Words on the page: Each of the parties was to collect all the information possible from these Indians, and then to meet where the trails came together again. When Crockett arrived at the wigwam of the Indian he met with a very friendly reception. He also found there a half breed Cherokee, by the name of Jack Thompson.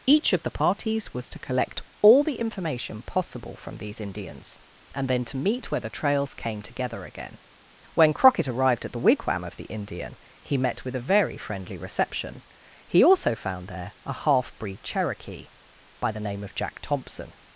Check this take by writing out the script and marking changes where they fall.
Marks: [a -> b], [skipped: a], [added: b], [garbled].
Each of the parties was to collect all the information possible from these Indians, and then to meet where the trails came together again. When Crockett arrived at the wigwam of the Indian he met with a very friendly reception. He also found there a half breed Cherokee, by the name of Jack Thompson.